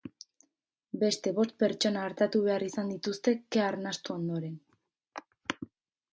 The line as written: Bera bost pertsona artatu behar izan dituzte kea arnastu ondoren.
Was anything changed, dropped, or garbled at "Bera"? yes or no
yes